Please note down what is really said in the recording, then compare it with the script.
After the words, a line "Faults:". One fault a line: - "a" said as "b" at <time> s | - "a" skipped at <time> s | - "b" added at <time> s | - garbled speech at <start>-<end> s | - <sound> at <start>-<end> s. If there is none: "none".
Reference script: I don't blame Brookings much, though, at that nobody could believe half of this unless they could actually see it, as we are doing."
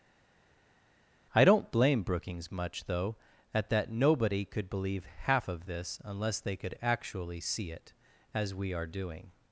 I don't blame Brookings much, though, at that nobody could believe half of this unless they could actually see it, as we are doing."
Faults:
none